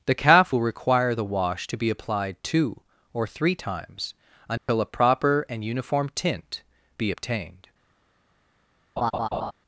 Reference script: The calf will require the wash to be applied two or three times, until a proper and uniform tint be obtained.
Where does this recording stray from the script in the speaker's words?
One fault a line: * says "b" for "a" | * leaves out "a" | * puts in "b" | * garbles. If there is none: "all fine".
all fine